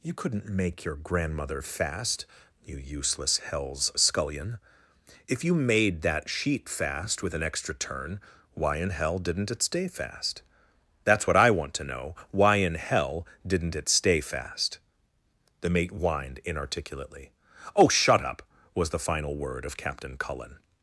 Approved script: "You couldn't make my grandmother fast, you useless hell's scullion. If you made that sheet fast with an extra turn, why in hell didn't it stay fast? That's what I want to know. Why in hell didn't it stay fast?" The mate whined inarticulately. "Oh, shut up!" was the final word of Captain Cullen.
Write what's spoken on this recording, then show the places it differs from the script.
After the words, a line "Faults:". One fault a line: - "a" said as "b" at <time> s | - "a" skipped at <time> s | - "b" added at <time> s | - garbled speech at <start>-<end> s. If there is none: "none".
"You couldn't make your grandmother fast, you useless hell's scullion. If you made that sheet fast with an extra turn, why in hell didn't it stay fast? That's what I want to know. Why in hell didn't it stay fast?" The mate whined inarticulately. "Oh, shut up!" was the final word of Captain Cullen.
Faults:
- "my" said as "your" at 0.8 s